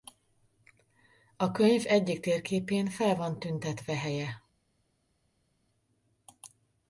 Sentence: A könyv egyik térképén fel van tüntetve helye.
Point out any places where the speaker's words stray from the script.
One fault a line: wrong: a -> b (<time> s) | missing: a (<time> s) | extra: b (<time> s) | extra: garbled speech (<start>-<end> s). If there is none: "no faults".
no faults